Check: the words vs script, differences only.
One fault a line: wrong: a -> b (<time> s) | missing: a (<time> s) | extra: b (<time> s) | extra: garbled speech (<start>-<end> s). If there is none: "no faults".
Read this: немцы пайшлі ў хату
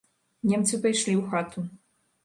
no faults